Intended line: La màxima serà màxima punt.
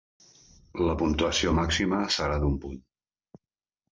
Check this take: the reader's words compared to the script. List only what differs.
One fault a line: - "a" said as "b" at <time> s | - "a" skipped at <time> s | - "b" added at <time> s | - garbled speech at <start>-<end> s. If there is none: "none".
- "puntuació" added at 1.0 s
- "màxima" said as "d'un" at 2.5 s